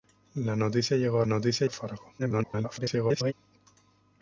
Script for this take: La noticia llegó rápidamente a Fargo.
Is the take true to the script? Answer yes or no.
no